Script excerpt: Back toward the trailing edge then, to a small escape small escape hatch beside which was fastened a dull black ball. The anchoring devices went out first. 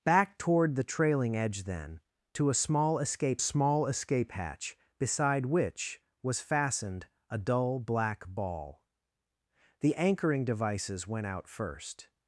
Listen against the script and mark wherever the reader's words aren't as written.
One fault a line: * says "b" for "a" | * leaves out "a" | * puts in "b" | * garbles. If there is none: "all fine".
all fine